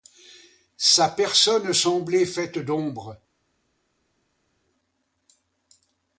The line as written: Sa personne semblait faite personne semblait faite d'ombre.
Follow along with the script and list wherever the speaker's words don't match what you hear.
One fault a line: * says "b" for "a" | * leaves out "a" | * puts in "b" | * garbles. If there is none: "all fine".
* leaves out "personne semblait faite"